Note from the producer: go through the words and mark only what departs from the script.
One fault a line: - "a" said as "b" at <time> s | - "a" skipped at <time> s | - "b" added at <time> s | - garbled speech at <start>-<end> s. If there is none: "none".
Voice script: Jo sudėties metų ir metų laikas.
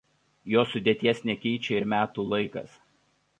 - "metų" said as "nekeičia" at 1.3 s